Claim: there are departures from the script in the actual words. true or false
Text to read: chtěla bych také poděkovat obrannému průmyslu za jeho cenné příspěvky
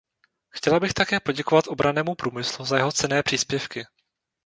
false